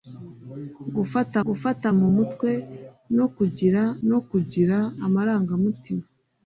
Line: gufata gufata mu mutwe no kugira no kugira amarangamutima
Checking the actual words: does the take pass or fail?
pass